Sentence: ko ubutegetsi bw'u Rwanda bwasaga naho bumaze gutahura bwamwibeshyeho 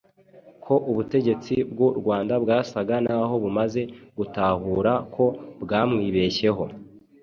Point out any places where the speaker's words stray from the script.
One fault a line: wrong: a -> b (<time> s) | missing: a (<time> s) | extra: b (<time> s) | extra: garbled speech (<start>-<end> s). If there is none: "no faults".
extra: ko (5.1 s)